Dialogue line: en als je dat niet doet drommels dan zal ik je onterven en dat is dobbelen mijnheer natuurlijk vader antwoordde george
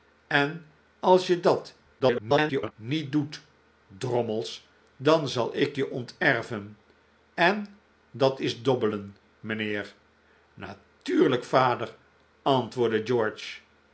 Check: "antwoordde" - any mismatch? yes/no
no